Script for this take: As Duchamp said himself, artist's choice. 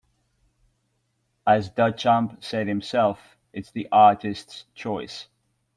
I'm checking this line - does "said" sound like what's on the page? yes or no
yes